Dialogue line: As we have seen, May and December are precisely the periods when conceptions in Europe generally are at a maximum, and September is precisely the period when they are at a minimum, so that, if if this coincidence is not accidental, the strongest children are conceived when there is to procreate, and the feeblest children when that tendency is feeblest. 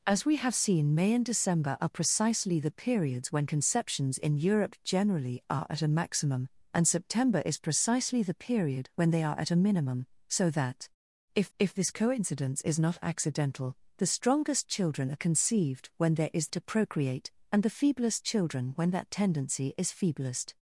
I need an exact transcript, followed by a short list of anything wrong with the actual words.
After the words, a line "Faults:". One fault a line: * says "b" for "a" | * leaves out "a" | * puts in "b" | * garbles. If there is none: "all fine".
As we have seen, May and December are precisely the periods when conceptions in Europe generally are at a maximum, and September is precisely the period when they are at a minimum, so that, if if this coincidence is not accidental, the strongest children are conceived when there is to procreate, and the feeblest children when that tendency is feeblest.
Faults:
all fine